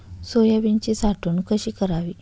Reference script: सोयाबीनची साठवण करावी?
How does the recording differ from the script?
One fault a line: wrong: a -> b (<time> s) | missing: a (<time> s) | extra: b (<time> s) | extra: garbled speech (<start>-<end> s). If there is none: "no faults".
extra: कशी (1.5 s)